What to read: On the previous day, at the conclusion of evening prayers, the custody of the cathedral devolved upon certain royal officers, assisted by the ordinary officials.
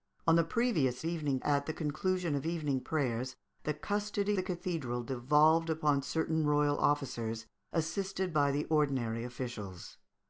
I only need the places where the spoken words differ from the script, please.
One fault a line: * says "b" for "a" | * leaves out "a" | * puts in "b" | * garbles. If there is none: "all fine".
* says "evening" for "day"
* leaves out "of"